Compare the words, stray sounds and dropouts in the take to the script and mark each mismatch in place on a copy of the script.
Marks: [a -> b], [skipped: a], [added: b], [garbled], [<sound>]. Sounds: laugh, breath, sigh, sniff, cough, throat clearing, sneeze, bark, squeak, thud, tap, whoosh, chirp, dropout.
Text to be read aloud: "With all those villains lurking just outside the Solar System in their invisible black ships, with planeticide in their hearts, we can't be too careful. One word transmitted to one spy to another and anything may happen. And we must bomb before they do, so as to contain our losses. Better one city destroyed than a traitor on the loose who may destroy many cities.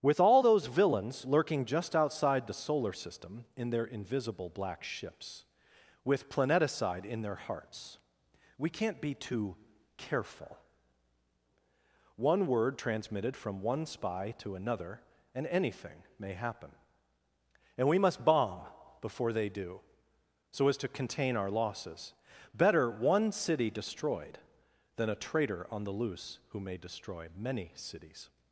"With all those villains lurking just outside the Solar System in their invisible black ships, with planeticide in their hearts, we can't be too careful. One word transmitted [to -> from] one spy to another and anything may happen. And we must bomb before they do, so as to contain our losses. Better one city destroyed than a traitor on the loose who may destroy many cities.